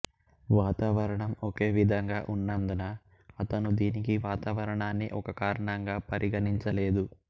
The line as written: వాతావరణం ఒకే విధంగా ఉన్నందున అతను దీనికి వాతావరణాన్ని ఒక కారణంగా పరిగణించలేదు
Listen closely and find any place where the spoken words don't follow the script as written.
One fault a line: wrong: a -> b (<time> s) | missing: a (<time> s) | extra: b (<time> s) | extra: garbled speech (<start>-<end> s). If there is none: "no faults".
no faults